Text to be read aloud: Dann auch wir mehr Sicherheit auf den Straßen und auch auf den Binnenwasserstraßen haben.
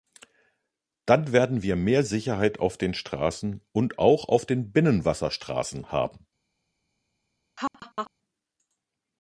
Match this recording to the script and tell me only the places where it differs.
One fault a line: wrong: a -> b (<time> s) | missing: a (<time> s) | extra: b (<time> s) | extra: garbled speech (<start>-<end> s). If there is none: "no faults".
wrong: auch -> werden (1.3 s)